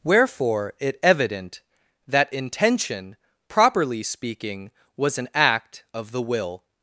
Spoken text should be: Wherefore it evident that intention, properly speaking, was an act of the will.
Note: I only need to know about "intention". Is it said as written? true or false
true